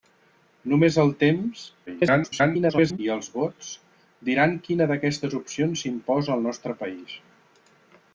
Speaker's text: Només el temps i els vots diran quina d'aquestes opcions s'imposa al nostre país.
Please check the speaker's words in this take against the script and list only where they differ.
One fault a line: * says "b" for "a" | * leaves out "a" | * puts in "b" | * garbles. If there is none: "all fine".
* garbles